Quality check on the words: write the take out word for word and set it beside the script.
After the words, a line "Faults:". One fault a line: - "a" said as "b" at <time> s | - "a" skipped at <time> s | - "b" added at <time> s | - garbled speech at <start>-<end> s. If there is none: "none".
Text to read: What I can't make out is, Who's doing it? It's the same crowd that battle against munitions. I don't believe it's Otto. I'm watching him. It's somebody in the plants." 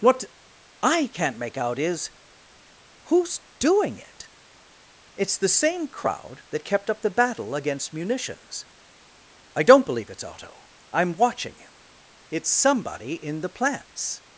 What I can't make out is, Who's doing it? It's the same crowd that kept up the battle against munitions. I don't believe it's Otto. I'm watching him. It's somebody in the plants."
Faults:
- "kept up the" added at 6.7 s